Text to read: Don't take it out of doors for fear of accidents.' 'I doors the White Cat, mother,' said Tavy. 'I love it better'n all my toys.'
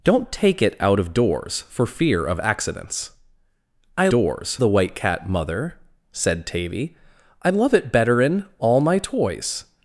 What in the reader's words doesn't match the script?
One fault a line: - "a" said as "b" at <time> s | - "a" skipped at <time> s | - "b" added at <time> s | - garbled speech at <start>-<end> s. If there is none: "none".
none